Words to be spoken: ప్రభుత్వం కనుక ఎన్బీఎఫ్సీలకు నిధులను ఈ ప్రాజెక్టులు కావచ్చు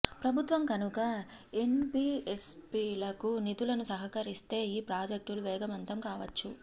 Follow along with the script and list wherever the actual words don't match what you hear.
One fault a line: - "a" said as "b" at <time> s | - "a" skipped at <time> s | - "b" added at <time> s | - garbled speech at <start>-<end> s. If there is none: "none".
- "సమకూరిస్తే" added at 3.9 s
- "వేగవంతం" added at 5.4 s